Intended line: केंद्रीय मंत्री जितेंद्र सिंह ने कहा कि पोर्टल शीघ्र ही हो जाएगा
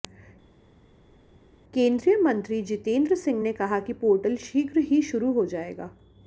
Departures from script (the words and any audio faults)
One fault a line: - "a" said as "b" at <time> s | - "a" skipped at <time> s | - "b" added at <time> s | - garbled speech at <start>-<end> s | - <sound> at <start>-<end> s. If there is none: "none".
- "शुरू" added at 5.0 s